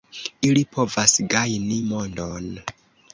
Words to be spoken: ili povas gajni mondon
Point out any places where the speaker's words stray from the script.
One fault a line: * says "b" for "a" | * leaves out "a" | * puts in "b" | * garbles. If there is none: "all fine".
all fine